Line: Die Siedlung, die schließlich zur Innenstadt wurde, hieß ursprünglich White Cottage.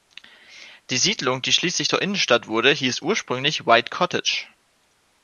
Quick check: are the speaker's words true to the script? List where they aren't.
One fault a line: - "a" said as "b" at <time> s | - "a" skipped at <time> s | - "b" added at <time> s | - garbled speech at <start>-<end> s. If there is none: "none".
none